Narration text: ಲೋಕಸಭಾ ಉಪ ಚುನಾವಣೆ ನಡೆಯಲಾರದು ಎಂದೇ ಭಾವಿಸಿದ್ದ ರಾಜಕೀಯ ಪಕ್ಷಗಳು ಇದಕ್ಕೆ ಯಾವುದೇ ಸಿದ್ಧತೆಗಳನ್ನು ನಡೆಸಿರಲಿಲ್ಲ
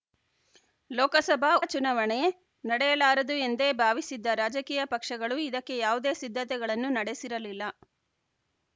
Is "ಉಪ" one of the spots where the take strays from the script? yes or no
yes